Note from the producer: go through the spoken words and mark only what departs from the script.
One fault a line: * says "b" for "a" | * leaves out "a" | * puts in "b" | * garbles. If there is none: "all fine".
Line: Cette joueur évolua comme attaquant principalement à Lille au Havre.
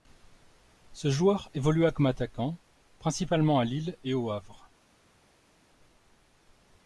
* says "Ce" for "Cette"
* puts in "et"